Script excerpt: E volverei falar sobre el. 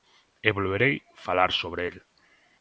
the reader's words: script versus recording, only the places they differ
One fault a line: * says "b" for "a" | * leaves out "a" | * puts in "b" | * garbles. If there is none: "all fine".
all fine